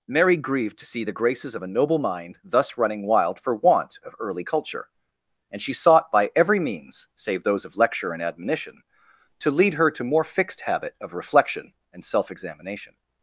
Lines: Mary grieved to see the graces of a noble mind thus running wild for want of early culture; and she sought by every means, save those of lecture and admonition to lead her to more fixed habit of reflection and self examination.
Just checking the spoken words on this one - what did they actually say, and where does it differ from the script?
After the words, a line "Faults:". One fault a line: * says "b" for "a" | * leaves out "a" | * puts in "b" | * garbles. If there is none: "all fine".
Mary grieved to see the graces of a noble mind thus running wild for want of early culture; and she sought by every means, save those of lecture and admonition to lead her to more fixed habit of reflection and self examination.
Faults:
all fine